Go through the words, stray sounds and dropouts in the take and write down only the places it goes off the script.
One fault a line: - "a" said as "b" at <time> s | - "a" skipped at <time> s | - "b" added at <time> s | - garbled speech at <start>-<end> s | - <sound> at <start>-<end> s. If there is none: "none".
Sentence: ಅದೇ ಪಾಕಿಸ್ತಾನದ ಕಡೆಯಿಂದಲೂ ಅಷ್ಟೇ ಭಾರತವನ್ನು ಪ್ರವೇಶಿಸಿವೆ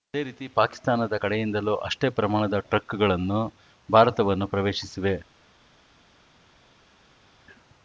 - "ರೀತಿ" added at 0.2 s
- "ಪ್ರಮಾಣದ ಟ್ರಕ್‌ಗಳನ್ನು" added at 2.1 s